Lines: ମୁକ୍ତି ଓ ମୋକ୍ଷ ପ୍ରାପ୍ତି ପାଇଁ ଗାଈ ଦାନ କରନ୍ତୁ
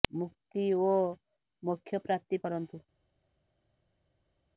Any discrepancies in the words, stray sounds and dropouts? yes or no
yes